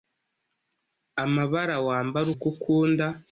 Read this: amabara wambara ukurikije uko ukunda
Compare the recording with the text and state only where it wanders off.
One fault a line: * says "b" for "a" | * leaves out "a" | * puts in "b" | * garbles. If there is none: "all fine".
* leaves out "ukurikije"